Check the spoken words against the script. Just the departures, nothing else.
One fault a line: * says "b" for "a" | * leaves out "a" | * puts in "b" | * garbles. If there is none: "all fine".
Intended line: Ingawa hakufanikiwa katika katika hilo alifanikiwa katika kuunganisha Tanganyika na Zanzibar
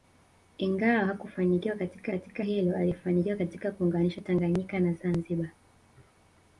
all fine